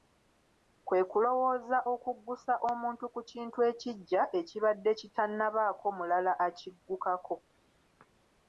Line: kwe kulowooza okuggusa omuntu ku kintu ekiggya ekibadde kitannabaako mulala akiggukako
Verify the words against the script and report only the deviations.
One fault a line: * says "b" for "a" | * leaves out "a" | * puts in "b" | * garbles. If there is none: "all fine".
all fine